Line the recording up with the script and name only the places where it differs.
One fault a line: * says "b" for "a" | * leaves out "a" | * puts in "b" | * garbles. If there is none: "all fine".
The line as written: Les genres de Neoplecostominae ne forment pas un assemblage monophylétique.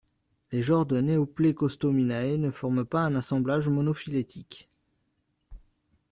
all fine